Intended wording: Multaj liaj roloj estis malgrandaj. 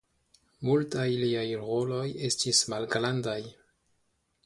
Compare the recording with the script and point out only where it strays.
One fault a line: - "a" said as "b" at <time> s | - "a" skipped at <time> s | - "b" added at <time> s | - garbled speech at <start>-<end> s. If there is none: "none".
none